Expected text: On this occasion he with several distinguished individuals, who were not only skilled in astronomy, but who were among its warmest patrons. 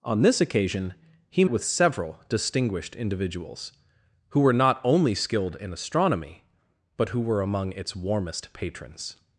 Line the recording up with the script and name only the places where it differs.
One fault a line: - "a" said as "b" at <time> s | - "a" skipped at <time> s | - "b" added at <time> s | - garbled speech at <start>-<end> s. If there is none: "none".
none